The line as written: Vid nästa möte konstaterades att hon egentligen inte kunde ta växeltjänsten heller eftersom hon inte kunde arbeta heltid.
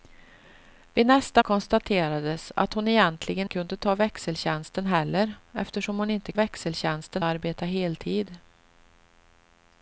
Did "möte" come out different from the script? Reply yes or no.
yes